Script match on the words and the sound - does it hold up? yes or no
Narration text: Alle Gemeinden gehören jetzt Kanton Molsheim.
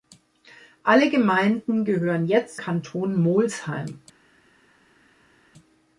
yes